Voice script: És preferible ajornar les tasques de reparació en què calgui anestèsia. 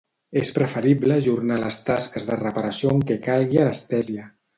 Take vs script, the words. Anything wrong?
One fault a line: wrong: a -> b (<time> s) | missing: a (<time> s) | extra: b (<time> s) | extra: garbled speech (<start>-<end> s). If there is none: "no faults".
no faults